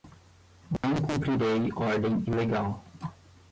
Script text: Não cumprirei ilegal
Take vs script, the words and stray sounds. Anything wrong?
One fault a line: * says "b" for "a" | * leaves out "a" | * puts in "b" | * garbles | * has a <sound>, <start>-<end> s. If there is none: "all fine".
* has a dropout, 0.8-0.8 s
* puts in "ordem"